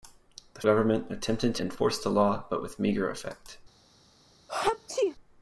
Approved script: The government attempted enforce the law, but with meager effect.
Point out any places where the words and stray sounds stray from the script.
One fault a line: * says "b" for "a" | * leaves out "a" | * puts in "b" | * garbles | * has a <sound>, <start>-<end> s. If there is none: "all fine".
* has a sneeze, 4.5-5.2 s